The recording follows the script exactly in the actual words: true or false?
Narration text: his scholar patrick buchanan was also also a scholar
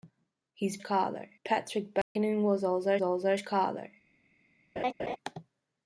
true